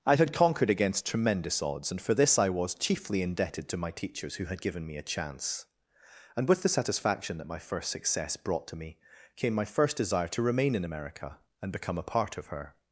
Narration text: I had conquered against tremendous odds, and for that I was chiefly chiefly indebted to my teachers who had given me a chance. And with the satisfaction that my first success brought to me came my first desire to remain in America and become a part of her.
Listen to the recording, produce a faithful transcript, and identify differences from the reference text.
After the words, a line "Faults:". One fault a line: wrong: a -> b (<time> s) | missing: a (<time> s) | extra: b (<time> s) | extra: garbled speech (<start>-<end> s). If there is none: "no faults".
I had conquered against tremendous odds, and for this I was chiefly indebted to my teachers who had given me a chance. And with the satisfaction that my first success brought to me came my first desire to remain in America and become a part of her.
Faults:
wrong: that -> this (2.1 s)
missing: chiefly (3.2 s)